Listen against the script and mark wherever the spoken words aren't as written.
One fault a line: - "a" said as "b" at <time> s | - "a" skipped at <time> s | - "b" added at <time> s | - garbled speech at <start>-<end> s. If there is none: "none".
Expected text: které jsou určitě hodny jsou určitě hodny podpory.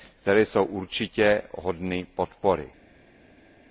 - "jsou určitě hodny" skipped at 2.1 s